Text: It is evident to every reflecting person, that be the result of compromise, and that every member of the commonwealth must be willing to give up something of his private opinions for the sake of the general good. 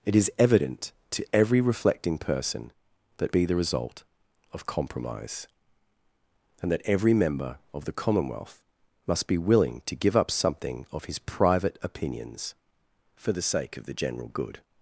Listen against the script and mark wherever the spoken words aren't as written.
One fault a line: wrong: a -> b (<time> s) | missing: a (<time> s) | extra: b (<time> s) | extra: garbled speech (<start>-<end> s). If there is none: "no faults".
no faults